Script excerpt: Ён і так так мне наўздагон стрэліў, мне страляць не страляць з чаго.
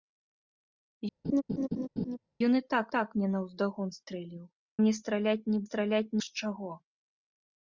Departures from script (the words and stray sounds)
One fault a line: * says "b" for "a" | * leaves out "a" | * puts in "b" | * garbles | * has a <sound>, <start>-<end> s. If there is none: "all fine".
* has a laugh, 1.2-2.2 s